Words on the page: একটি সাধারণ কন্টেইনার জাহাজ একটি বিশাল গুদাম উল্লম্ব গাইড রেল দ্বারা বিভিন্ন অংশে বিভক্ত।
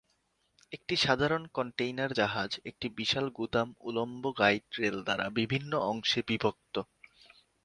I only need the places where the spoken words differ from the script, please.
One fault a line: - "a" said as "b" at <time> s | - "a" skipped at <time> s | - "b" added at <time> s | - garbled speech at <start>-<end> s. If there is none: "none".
none